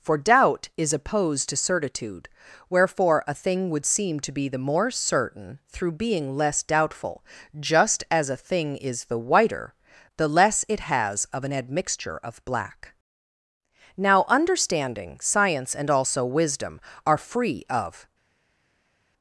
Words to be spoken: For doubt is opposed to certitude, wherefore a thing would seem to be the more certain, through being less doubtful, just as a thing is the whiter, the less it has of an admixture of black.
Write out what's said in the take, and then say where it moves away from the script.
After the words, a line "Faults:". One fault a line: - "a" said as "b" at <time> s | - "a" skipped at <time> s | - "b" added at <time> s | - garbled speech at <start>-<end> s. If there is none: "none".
For doubt is opposed to certitude, wherefore a thing would seem to be the more certain, through being less doubtful, just as a thing is the whiter, the less it has of an admixture of black. Now understanding, science and also wisdom are free of
Faults:
- "Now understanding science and also wisdom are free of" added at 13.9 s